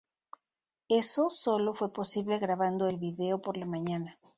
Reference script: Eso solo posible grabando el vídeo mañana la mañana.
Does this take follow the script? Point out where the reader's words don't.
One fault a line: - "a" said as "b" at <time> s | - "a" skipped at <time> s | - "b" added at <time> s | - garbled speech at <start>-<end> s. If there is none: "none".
- "fue" added at 1.8 s
- "mañana" said as "por" at 3.4 s